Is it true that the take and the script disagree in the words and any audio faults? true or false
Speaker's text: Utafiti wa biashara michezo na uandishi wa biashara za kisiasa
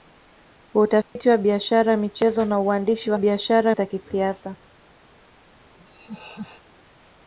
true